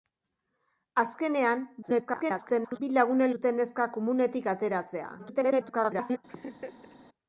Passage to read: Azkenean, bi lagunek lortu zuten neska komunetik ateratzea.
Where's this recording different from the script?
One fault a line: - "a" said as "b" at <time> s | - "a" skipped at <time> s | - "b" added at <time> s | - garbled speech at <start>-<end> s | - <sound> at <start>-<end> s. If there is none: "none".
- garbled speech at 1.8-2.8 s
- "lortu" skipped at 3.3 s
- garbled speech at 5.2-6.2 s
- laugh at 6.3-7.0 s